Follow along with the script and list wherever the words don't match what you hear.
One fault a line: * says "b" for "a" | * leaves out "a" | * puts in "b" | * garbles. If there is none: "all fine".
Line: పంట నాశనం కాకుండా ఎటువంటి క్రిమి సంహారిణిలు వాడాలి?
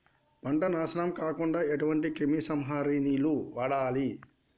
all fine